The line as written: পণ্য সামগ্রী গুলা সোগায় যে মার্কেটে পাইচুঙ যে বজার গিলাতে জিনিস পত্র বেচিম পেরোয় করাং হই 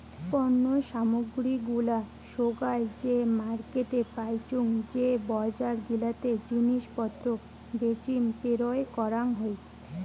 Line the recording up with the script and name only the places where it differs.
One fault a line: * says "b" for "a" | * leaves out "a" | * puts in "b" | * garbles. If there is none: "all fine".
all fine